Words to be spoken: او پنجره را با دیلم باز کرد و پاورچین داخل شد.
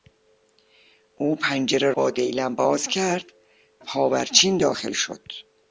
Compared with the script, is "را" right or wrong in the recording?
wrong